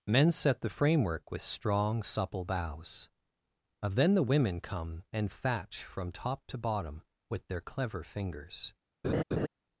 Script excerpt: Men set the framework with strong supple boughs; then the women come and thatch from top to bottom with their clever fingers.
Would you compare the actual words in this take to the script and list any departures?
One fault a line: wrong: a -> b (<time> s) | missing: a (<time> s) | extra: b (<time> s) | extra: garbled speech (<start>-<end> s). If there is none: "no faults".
extra: of (3.8 s)